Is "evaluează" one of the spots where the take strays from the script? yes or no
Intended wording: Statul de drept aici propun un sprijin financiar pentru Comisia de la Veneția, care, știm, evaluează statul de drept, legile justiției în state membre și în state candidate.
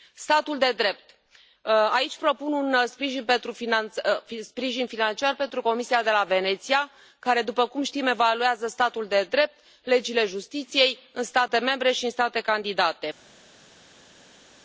no